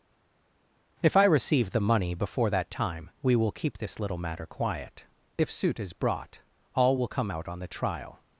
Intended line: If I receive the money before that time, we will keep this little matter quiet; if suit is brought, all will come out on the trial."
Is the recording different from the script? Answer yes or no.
no